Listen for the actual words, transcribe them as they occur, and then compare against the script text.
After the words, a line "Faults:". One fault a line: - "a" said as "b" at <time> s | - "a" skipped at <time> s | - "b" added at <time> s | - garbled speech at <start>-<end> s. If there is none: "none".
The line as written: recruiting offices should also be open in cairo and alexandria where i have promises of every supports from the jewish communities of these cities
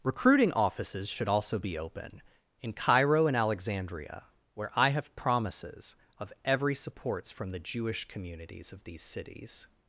recruiting offices should also be open in cairo and alexandria where i have promises of every supports from the jewish communities of these cities
Faults:
none